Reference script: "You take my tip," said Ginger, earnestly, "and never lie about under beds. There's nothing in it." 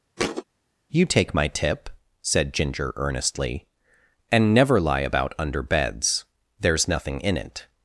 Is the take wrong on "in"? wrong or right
right